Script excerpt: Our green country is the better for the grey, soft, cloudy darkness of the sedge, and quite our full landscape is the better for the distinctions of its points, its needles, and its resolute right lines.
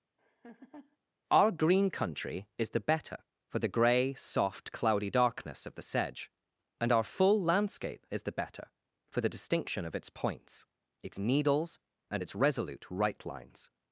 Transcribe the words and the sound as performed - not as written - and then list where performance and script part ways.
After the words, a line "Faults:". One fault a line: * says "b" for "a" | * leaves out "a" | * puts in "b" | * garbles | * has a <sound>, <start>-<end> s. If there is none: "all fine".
Our green country is the better for the grey, soft, cloudy darkness of the sedge, and our full landscape is the better for the distinction of its points, its needles, and its resolute right lines.
Faults:
* has a laugh, 0.2-1.0 s
* leaves out "quite"
* says "distinction" for "distinctions"